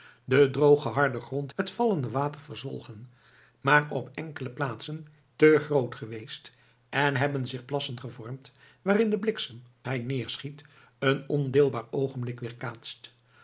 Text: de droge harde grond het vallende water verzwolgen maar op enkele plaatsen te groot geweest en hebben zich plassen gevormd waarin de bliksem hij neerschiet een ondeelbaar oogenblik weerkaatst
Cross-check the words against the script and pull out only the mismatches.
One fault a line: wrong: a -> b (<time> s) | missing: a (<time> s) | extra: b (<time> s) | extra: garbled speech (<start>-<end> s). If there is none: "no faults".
no faults